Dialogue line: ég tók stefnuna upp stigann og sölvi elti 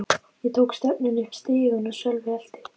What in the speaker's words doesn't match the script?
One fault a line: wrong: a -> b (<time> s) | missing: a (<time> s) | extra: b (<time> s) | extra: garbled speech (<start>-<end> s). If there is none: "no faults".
no faults